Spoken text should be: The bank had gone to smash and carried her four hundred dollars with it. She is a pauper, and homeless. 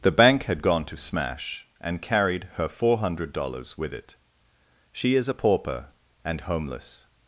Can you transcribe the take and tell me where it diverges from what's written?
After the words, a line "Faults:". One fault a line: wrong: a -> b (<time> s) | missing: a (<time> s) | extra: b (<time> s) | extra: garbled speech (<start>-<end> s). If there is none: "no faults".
The bank had gone to smash and carried her four hundred dollars with it. She is a pauper, and homeless.
Faults:
no faults